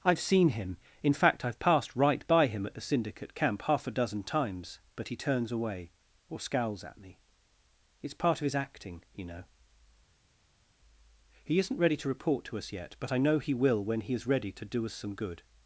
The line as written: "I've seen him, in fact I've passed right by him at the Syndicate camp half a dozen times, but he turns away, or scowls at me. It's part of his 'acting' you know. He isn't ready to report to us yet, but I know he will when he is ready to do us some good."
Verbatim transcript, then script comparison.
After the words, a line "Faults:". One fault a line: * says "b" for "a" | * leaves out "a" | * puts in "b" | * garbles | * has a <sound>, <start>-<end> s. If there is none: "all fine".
"I've seen him, in fact I've passed right by him at the Syndicate camp half a dozen times, but he turns away, or scowls at me. It's part of his 'acting' you know. He isn't ready to report to us yet, but I know he will when he is ready to do us some good."
Faults:
all fine